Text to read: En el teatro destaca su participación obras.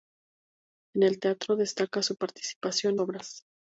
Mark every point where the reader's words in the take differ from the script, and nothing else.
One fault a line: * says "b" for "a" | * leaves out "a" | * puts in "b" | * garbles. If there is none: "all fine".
all fine